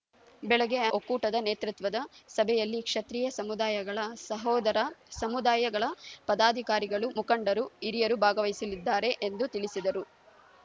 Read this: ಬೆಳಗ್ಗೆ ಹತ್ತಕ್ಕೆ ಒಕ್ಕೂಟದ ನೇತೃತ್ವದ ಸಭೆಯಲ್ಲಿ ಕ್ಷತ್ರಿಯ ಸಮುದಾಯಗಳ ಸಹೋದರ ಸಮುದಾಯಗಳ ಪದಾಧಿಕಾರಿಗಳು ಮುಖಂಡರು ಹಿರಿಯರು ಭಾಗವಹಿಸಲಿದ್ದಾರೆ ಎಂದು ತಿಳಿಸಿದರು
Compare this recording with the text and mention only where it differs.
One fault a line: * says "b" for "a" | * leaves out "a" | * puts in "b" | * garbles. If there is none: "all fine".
* leaves out "ಹತ್ತಕ್ಕೆ"